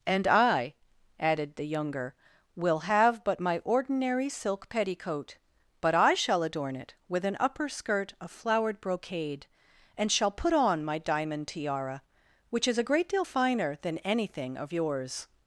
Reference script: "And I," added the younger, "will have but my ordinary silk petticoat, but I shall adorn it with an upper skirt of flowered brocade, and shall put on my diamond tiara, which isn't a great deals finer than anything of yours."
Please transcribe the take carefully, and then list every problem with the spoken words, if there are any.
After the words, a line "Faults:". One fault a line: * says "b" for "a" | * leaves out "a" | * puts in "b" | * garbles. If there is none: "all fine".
"And I," added the younger, "will have but my ordinary silk petticoat, but I shall adorn it with an upper skirt of flowered brocade, and shall put on my diamond tiara, which is a great deal finer than anything of yours."
Faults:
* says "is" for "isn't"
* says "deal" for "deals"